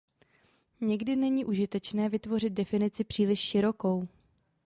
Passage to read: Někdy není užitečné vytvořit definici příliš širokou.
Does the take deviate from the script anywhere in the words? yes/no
no